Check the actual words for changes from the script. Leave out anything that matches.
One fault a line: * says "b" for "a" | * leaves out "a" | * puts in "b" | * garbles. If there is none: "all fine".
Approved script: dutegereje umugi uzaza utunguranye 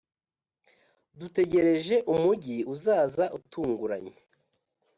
all fine